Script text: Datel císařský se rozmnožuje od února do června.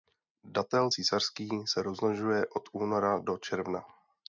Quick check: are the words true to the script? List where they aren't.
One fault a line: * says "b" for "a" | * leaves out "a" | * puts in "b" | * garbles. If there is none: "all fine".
all fine